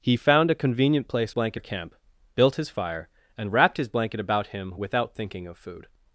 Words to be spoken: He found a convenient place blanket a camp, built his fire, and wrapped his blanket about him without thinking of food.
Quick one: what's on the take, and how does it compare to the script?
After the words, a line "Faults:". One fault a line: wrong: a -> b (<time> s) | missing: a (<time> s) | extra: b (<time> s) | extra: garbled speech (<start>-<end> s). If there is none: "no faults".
He found a convenient place blanket a camp, built his fire, and wrapped his blanket about him without thinking of food.
Faults:
no faults